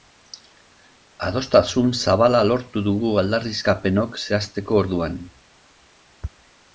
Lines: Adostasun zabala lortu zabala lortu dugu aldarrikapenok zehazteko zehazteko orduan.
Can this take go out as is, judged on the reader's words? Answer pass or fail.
fail